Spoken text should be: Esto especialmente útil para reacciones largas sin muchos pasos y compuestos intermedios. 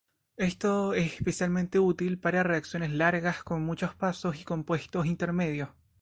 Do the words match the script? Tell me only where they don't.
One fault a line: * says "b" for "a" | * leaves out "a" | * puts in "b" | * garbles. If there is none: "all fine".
* puts in "es"
* says "con" for "sin"